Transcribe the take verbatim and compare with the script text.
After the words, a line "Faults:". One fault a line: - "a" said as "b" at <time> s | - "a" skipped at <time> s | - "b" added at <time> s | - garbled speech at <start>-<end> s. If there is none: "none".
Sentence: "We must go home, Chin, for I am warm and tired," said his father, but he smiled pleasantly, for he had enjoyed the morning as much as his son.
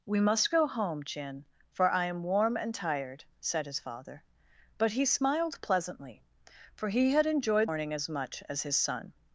"We must go home, Chin, for I am warm and tired," said his father, but he smiled pleasantly, for he had enjoyed morning as much as his son.
Faults:
- "the" skipped at 7.7 s